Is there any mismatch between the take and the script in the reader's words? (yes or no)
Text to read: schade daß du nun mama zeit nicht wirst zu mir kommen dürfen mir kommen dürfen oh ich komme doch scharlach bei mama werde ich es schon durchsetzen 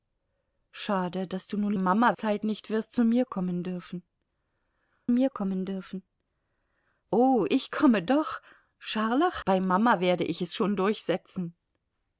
no